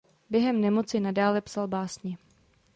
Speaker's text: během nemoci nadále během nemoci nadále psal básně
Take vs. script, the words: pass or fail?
fail